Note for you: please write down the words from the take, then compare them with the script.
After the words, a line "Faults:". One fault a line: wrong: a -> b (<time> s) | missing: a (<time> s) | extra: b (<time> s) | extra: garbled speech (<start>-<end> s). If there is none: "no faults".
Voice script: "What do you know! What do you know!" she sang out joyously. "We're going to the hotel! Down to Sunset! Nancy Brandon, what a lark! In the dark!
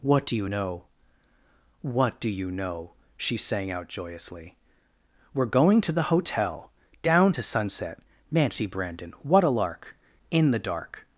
"What do you know! What do you know!" she sang out joyously. "We're going to the hotel! Down to Sunset! Nancy Brandon, what a lark! In the dark!
Faults:
no faults